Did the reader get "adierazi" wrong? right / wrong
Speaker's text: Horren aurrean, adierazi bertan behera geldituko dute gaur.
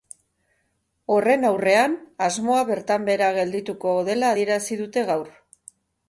wrong